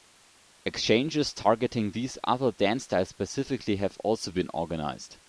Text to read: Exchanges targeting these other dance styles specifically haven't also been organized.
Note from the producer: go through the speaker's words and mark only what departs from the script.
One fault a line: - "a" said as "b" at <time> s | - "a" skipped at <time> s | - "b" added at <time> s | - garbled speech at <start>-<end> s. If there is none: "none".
- "haven't" said as "have" at 3.8 s